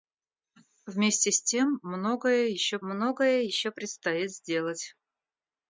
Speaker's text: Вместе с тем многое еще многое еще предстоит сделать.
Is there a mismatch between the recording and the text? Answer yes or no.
no